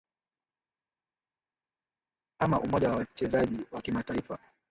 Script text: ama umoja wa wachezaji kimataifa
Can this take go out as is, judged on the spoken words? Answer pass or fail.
fail